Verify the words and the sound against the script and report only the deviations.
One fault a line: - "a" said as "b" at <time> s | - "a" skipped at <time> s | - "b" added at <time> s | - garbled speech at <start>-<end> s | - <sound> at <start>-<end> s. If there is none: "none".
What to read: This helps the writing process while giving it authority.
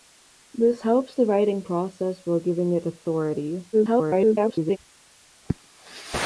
- garbled speech at 3.7-4.8 s